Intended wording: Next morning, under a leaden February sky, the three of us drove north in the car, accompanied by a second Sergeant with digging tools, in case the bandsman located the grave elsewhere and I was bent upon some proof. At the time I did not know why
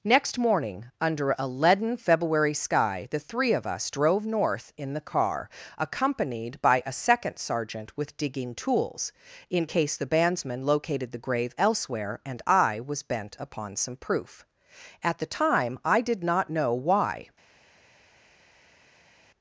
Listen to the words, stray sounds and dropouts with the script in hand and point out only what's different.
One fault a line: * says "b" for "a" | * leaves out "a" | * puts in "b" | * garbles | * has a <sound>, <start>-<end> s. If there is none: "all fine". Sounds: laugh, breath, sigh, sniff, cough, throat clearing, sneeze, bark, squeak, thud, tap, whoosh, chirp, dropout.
all fine